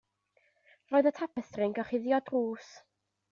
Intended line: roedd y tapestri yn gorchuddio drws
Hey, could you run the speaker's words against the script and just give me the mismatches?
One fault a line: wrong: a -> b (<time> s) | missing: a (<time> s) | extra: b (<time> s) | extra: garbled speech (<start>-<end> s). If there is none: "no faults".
no faults